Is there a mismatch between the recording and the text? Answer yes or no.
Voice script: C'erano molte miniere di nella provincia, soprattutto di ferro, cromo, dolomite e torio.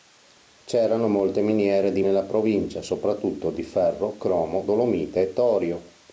no